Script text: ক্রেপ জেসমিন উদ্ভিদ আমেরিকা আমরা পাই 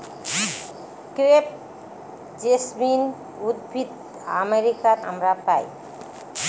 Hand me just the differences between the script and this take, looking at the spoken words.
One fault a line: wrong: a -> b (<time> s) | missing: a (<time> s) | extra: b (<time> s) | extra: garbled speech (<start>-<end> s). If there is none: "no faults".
no faults